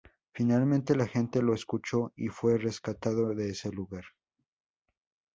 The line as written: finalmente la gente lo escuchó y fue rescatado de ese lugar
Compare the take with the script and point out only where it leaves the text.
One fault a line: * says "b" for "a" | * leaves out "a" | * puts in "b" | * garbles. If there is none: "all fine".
all fine